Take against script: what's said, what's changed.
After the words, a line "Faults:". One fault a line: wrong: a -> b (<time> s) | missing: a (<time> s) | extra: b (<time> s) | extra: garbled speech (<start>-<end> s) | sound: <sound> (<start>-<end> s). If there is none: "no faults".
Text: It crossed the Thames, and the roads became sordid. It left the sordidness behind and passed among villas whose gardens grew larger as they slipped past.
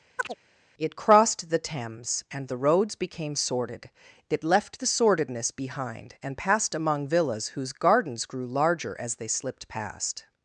It crossed the Thames, and the roads became sordid. It left the sordidness behind and passed among villas whose gardens grew larger as they slipped past.
Faults:
sound: chirp (0.2-0.4 s)